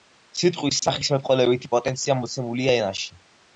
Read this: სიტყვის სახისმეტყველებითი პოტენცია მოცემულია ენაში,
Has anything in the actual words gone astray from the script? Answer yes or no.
no